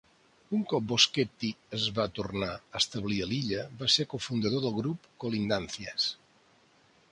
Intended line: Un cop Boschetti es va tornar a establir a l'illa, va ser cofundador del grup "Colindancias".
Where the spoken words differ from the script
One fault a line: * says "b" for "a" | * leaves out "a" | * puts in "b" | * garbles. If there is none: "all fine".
all fine